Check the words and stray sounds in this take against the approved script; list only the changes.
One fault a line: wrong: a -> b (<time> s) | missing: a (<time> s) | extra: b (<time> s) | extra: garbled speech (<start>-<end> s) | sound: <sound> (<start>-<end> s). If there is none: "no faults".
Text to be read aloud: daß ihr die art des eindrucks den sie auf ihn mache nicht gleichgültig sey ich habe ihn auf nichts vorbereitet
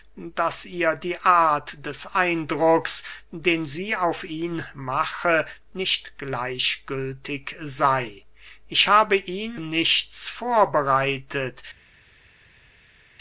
missing: auf (9.6 s)